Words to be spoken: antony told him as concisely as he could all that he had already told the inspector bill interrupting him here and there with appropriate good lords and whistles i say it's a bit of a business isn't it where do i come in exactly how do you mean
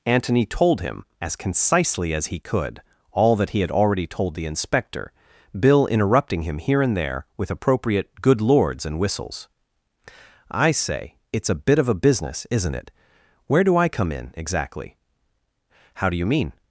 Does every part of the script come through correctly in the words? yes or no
yes